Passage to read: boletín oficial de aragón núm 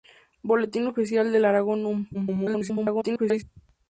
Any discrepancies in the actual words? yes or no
yes